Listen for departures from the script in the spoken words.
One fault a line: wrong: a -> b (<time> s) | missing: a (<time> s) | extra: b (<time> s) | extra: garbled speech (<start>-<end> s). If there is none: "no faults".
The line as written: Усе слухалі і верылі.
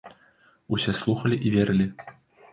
no faults